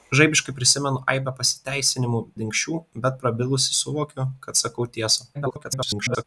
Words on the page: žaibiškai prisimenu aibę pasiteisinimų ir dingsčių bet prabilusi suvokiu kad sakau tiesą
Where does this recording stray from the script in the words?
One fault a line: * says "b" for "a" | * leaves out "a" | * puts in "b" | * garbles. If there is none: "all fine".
* leaves out "ir"
* garbles